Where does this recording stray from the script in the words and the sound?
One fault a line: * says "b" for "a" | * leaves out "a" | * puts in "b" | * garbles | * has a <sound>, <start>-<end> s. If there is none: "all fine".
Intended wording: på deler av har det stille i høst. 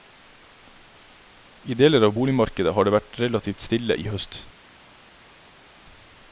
* says "I" for "på"
* puts in "boligmarkedet"
* puts in "vært relativt"